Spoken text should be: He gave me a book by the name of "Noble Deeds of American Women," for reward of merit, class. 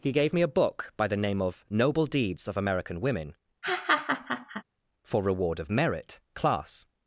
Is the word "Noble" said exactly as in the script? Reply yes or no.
yes